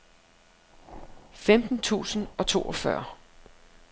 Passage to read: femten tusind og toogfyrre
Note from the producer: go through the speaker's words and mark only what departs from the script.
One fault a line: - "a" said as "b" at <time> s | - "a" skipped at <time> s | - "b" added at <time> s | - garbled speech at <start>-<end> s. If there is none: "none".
none